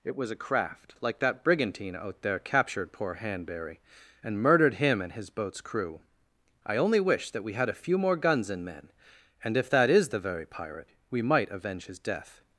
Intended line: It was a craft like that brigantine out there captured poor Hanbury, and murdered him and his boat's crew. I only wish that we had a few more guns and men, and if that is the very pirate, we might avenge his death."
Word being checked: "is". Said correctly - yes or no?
yes